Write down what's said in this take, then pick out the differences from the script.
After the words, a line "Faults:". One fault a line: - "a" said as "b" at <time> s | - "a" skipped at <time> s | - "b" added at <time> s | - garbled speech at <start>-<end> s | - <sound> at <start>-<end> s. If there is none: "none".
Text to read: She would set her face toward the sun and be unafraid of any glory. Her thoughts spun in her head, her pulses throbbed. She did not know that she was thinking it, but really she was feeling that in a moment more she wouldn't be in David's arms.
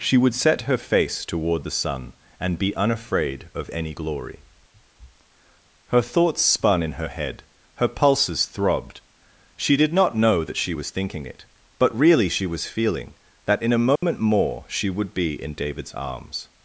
She would set her face toward the sun and be unafraid of any glory. Her thoughts spun in her head, her pulses throbbed. She did not know that she was thinking it, but really she was feeling that in a moment more she would be in David's arms.
Faults:
- dropout at 14.0-14.0 s
- "wouldn't" said as "would" at 14.9 s